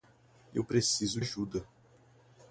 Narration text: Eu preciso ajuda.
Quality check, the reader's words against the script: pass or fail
pass